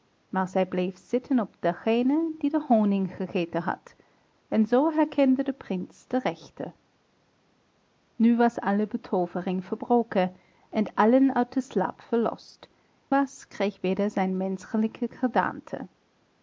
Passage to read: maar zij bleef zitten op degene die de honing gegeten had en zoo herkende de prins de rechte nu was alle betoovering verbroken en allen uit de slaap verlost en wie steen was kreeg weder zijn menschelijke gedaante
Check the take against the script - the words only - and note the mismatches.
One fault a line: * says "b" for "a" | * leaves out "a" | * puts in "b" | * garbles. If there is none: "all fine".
* leaves out "en wie steen"